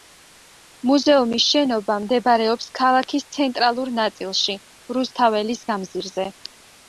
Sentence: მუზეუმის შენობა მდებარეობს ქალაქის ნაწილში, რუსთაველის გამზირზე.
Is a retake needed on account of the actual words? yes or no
yes